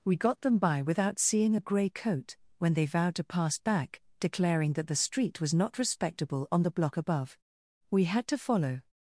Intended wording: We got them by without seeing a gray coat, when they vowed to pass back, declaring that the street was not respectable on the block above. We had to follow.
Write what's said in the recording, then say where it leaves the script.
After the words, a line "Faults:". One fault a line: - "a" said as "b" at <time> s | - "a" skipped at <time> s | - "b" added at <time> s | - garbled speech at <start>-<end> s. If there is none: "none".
We got them by without seeing a gray coat, when they vowed to pass back, declaring that the street was not respectable on the block above. We had to follow.
Faults:
none